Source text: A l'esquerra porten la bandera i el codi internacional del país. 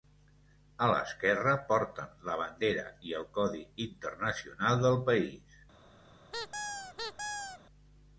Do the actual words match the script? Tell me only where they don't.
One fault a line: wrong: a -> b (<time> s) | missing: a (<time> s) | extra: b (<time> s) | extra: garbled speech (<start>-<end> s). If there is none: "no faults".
no faults